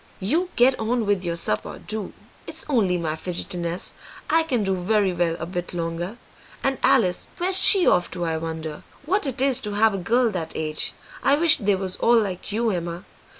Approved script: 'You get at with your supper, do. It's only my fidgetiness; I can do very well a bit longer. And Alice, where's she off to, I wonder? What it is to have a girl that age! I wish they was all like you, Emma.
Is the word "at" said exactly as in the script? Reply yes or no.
no